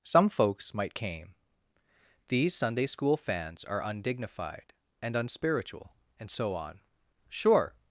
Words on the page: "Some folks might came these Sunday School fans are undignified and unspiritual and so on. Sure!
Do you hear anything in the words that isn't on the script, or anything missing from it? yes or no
no